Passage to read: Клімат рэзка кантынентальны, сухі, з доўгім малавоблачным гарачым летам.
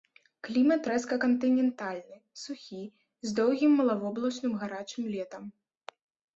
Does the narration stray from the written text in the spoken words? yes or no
no